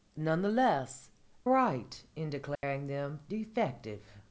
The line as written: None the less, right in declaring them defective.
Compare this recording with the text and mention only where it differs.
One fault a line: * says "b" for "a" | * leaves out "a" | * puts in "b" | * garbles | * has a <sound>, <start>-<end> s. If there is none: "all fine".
* has a dropout, 2.6-2.6 s